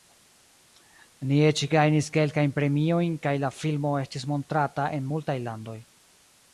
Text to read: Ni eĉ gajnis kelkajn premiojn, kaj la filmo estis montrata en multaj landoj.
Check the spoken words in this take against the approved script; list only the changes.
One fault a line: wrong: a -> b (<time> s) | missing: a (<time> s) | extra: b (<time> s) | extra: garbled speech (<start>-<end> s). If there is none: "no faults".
no faults